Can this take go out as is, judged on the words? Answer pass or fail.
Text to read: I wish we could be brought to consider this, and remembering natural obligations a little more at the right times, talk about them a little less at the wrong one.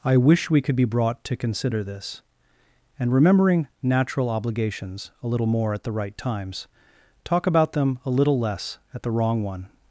pass